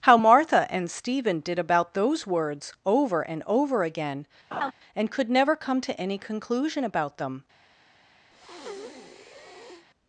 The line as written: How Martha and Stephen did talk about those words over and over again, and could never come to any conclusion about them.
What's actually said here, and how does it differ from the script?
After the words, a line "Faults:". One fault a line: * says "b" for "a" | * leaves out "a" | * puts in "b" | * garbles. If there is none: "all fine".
How Martha and Stephen did about those words over and over again, and could never come to any conclusion about them.
Faults:
* leaves out "talk"